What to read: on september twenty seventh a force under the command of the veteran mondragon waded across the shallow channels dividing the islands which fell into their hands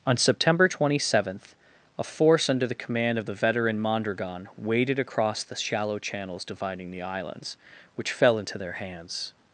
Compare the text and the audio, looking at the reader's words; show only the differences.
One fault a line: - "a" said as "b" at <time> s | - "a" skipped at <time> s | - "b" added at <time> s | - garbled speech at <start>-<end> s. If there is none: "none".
none